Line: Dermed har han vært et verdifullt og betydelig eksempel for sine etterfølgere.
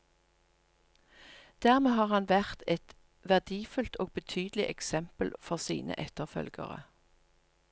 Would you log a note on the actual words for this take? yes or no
no